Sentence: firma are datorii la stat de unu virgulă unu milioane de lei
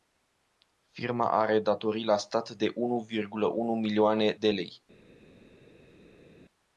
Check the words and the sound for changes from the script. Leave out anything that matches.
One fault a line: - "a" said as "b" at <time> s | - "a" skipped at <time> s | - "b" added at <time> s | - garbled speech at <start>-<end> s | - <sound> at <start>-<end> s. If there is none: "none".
none